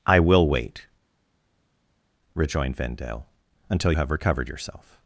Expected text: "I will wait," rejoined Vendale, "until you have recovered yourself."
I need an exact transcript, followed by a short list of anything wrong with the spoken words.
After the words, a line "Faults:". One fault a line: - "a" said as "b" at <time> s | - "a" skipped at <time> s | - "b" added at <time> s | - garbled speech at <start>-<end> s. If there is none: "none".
"I will wait," rejoined Vendale, "until have recovered yourself."
Faults:
- "you" skipped at 3.9 s